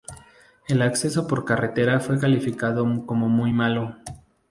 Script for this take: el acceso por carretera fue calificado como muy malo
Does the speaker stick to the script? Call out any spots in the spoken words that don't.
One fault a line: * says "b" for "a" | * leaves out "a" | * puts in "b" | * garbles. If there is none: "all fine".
all fine